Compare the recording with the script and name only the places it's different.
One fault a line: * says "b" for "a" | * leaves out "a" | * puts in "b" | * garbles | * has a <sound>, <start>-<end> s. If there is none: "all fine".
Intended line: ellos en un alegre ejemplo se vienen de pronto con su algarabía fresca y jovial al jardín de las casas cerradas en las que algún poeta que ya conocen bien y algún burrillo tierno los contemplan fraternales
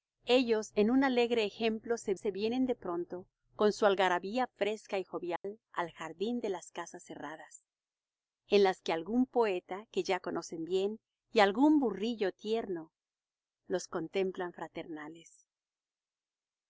* puts in "se"
* has a dropout, 5.4-5.4 s